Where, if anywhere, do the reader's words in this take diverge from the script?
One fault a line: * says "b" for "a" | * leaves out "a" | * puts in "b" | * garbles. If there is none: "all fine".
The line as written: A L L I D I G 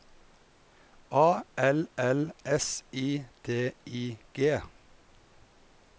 * puts in "S"